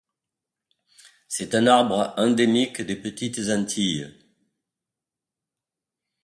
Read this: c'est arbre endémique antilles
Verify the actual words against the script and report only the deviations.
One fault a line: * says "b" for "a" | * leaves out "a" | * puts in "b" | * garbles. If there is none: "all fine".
* puts in "un"
* puts in "des petites"